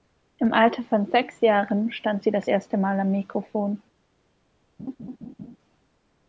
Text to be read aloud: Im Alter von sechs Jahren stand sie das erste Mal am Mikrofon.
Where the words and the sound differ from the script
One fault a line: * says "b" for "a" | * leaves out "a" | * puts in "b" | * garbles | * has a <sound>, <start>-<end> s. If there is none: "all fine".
* has a laugh, 4.8-5.6 s